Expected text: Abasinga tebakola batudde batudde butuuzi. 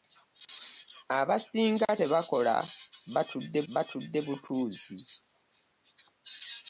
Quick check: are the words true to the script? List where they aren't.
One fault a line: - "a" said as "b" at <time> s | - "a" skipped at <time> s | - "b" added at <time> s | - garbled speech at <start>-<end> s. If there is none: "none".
none